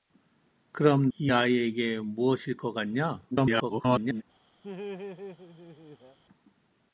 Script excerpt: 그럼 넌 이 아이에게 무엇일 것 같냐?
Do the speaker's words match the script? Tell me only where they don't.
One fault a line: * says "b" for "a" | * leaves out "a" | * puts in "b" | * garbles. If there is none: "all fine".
* leaves out "넌"
* garbles